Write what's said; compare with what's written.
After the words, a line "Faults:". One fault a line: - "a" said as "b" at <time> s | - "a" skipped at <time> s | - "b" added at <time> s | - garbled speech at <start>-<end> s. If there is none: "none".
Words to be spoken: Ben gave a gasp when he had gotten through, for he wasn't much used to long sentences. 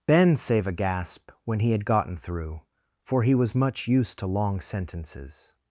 Ben save a gasp when he had gotten through, for he was much used to long sentences.
Faults:
- "gave" said as "save" at 0.3 s
- "wasn't" said as "was" at 3.4 s